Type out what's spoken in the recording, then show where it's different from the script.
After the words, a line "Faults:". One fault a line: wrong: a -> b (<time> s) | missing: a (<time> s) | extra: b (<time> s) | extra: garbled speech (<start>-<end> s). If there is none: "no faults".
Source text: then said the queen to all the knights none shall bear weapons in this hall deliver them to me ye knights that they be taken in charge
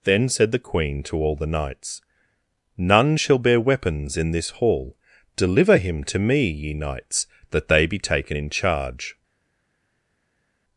then said the queen to all the knights none shall bear weapons in this hall deliver him to me ye knights that they be taken in charge
Faults:
wrong: them -> him (5.8 s)